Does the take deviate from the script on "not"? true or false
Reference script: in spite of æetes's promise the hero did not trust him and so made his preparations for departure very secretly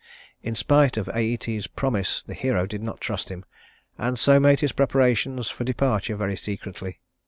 false